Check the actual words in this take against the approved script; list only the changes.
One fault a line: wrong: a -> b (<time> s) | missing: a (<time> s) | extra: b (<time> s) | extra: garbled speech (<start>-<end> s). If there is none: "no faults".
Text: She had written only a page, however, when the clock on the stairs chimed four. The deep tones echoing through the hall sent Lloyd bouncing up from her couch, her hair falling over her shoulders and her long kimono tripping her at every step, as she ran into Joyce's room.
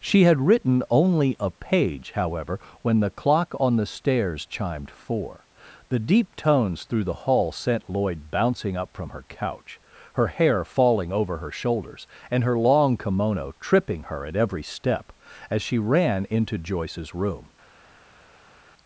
missing: echoing (6.8 s)